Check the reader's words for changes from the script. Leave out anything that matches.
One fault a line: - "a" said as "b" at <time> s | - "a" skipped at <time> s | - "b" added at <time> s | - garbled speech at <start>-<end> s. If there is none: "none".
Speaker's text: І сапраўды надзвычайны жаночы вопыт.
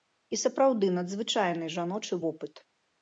none